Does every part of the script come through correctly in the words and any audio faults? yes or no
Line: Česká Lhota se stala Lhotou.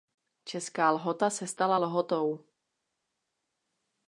yes